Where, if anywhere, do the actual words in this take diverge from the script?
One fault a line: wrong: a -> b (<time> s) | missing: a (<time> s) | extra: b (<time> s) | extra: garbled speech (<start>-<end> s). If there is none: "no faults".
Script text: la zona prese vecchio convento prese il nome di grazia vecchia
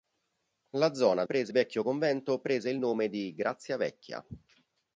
no faults